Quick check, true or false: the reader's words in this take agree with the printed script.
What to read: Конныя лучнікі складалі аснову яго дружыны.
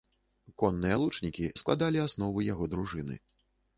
true